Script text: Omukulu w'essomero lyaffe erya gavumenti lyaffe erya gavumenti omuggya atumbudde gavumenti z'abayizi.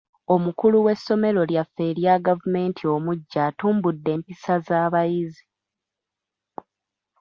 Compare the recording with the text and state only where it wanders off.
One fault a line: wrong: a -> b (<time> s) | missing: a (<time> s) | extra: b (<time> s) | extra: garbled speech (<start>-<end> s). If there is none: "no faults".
missing: lyaffe erya gavumenti (2.8 s)
wrong: gavumenti -> empisa (4.2 s)